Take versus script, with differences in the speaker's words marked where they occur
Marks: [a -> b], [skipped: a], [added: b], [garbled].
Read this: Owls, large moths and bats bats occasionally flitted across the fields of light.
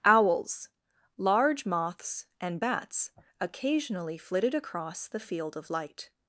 Owls, large moths and bats [skipped: bats] occasionally flitted across the [fields -> field] of light.